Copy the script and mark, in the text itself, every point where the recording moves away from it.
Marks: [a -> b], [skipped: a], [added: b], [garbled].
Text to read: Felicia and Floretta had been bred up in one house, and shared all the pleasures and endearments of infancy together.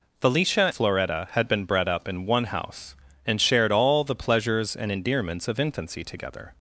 Felicia [skipped: and] Floretta had been bred up in one house, and shared all the pleasures and endearments of infancy together.